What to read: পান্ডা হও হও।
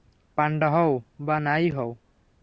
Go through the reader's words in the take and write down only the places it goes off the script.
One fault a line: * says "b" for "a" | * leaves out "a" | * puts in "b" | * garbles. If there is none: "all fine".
* puts in "বা না-ই"